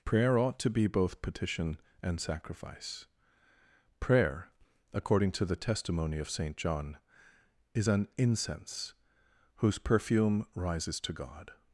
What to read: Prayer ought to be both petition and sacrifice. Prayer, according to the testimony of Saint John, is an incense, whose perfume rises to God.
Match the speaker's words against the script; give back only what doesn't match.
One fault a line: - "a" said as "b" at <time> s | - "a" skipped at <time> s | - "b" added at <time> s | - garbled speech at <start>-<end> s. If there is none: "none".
none